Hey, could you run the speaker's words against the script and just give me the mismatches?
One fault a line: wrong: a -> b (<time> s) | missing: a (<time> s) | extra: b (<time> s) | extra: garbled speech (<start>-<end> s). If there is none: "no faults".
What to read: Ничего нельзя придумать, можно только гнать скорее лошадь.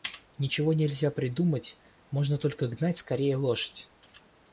no faults